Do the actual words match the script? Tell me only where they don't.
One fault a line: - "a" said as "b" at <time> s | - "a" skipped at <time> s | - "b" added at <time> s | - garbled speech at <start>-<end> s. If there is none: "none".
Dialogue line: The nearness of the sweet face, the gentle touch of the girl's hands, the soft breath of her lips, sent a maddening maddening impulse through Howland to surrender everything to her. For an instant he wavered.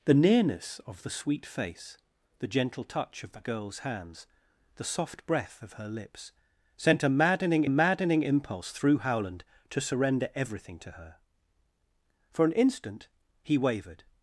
none